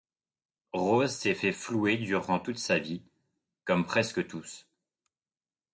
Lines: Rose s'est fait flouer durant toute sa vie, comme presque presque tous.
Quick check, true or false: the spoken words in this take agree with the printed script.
false